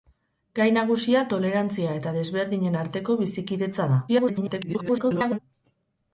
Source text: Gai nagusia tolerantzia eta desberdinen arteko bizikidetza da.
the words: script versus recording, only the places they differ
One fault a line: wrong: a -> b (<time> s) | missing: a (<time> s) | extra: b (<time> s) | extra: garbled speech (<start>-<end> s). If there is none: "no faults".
extra: garbled speech (4.1-5.4 s)